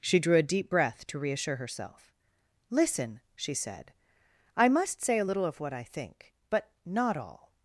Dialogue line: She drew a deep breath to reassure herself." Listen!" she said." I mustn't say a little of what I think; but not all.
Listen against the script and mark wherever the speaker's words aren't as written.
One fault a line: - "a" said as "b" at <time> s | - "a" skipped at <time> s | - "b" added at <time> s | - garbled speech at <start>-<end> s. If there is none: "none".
- "mustn't" said as "must" at 4.7 s